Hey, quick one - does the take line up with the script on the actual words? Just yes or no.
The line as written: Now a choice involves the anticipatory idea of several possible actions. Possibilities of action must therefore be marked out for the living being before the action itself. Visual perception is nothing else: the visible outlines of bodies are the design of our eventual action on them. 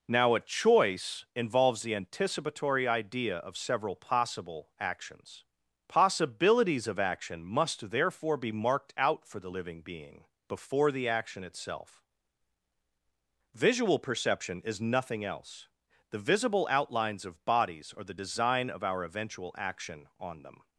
yes